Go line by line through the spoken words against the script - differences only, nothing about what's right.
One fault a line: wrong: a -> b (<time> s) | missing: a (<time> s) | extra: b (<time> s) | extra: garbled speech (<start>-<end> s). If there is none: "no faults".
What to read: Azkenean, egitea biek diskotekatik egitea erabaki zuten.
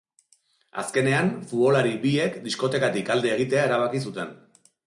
wrong: egitea -> futbolari (1.5 s)
extra: alde (3.2 s)